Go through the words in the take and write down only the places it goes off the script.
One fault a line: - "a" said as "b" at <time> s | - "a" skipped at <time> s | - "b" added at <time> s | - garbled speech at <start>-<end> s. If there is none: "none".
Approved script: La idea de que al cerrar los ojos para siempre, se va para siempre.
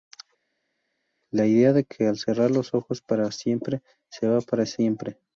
none